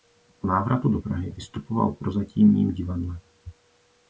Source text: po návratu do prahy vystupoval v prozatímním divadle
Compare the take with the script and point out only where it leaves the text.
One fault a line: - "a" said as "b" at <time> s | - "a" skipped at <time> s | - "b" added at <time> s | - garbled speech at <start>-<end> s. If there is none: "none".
none